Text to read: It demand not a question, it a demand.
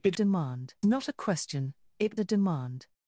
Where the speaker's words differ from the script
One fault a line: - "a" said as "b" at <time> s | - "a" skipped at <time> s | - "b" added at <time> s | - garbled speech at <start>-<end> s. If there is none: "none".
none